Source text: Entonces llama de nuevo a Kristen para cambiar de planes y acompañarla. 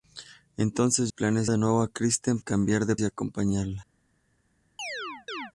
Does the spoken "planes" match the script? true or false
false